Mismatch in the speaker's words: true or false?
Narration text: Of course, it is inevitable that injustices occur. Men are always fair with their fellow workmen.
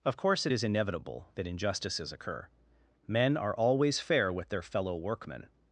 false